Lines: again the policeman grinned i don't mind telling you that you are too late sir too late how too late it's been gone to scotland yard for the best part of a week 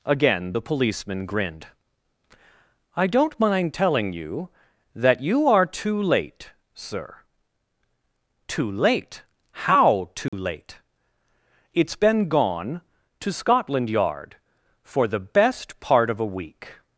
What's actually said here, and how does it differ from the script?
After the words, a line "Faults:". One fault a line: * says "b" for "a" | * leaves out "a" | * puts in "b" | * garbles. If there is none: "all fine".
again the policeman grinned i don't mind telling you that you are too late sir too late how too late it's been gone to scotland yard for the best part of a week
Faults:
all fine